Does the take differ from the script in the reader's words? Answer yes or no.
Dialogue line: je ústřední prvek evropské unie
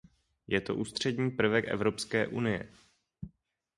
yes